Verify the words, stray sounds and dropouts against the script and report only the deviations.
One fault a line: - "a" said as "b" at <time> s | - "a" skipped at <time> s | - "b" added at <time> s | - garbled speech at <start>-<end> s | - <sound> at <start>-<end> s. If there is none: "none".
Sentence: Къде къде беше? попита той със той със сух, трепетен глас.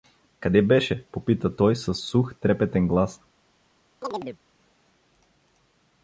- "къде" skipped at 0.6 s
- "той със" skipped at 2.0 s
- chirp at 4.0-4.4 s